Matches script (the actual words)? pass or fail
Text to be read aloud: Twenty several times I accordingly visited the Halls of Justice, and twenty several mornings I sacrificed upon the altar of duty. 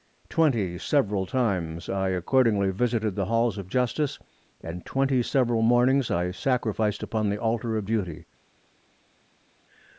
pass